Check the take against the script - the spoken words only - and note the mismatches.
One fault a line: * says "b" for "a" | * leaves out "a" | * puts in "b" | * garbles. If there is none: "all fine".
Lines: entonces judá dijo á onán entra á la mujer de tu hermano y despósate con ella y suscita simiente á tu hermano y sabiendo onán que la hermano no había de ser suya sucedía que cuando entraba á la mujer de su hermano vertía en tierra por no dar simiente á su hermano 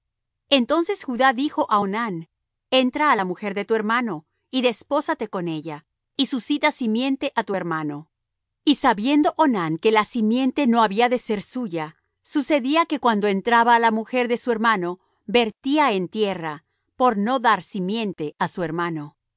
* says "simiente" for "hermano"